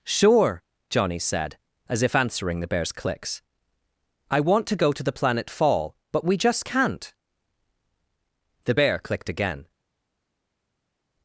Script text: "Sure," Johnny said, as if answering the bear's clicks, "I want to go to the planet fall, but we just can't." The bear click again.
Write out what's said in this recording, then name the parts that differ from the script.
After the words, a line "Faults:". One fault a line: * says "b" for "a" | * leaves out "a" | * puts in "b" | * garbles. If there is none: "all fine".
"Sure," Johnny said, as if answering the bear's clicks, "I want to go to the planet fall, but we just can't." The bear clicked again.
Faults:
* says "clicked" for "click"